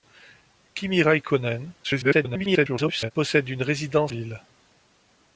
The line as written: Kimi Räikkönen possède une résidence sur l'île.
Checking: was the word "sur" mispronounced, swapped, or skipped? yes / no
yes